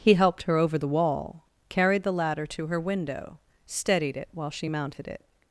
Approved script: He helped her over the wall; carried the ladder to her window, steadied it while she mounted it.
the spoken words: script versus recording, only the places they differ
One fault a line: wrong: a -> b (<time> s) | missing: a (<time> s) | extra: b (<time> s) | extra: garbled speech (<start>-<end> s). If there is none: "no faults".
no faults